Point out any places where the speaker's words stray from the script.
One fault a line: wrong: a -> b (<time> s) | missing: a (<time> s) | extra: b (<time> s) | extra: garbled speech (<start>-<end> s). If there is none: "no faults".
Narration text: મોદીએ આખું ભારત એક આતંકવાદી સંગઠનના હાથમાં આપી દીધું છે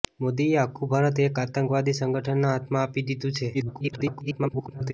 extra: garbled speech (3.5-4.9 s)